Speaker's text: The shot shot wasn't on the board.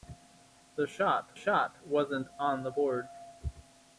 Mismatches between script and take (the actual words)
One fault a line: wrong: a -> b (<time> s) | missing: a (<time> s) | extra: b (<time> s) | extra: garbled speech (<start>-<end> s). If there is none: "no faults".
no faults